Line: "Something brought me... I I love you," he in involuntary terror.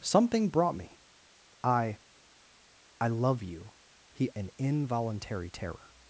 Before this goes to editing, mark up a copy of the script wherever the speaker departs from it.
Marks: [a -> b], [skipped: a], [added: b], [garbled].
"Something brought me... I I love you," he in involuntary terror.